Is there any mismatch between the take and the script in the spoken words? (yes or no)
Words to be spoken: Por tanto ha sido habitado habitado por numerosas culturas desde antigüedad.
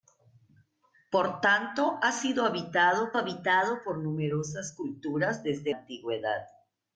no